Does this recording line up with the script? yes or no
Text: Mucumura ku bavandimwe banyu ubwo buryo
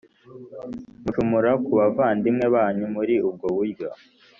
no